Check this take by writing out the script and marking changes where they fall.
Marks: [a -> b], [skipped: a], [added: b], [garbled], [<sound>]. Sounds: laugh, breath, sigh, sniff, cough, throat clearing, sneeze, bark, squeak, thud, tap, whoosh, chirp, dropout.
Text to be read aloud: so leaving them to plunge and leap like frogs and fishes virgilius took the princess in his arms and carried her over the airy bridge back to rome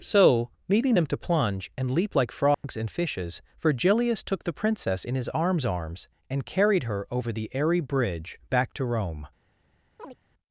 so leaving them to plunge and leap like frogs [dropout] and fishes virgilius took the princess in his arms [added: arms] and carried her over the airy bridge back to rome [chirp]